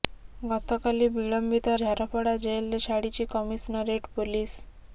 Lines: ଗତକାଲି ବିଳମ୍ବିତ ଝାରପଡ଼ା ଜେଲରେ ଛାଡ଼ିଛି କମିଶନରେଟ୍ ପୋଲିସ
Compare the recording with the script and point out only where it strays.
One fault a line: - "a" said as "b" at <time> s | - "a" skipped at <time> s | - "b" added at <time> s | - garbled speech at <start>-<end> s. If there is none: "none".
none